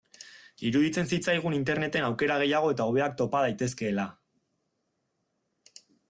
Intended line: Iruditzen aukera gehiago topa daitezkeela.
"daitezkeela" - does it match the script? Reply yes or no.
yes